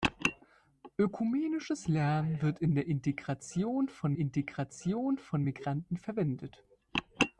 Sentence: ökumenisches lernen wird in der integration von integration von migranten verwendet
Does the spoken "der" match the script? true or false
true